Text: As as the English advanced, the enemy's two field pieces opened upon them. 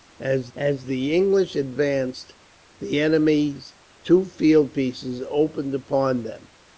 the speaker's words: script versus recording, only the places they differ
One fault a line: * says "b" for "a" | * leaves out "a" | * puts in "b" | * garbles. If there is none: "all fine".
all fine